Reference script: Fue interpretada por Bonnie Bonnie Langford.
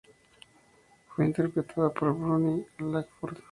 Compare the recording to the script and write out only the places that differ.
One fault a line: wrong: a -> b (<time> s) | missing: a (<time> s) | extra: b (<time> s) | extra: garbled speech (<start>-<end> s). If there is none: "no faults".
missing: Bonnie (2.6 s)